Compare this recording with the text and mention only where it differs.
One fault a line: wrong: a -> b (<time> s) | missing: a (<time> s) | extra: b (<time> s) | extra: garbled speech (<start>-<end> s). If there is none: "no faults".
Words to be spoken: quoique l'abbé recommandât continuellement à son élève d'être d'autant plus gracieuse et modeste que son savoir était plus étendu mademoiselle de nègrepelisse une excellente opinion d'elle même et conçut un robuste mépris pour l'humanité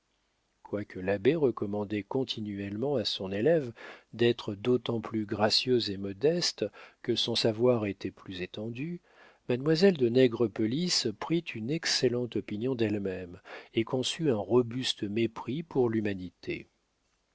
extra: prit (11.2 s)